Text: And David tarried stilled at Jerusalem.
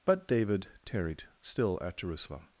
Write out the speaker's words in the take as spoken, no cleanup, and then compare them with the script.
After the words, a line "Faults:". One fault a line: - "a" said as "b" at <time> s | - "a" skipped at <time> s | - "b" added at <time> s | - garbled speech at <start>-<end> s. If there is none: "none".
But David tarried still at Jerusalem.
Faults:
- "And" said as "But" at 0.0 s
- "stilled" said as "still" at 1.4 s